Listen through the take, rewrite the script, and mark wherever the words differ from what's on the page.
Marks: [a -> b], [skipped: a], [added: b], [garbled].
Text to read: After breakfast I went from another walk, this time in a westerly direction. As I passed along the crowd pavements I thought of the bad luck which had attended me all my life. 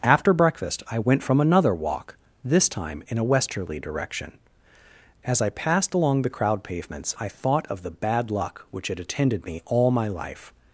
After breakfast I went from another walk, this time in a westerly direction. As I passed along the crowd pavements I thought of the bad luck which had attended me all my life.